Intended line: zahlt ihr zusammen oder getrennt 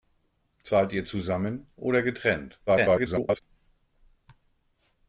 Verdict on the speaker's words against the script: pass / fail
fail